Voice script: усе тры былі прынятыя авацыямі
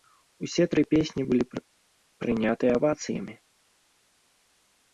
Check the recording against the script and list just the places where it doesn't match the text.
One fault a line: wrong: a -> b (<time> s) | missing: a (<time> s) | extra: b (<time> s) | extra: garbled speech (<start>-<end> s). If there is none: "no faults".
extra: песні (0.9 s)